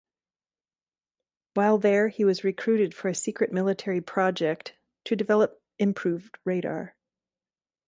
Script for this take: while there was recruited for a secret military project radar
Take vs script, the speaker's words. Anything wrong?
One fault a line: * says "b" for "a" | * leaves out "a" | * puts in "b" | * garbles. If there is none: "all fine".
* puts in "he"
* puts in "to develop improved"